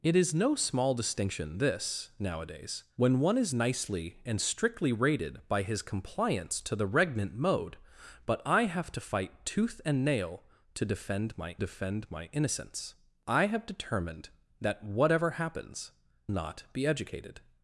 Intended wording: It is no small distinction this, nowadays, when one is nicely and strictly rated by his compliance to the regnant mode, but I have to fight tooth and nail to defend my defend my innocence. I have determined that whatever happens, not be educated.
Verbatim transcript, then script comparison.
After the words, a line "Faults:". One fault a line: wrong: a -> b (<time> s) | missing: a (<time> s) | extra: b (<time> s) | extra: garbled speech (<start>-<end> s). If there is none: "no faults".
It is no small distinction this, nowadays, when one is nicely and strictly rated by his compliance to the regnant mode, but I have to fight tooth and nail to defend my defend my innocence. I have determined that whatever happens, not be educated.
Faults:
no faults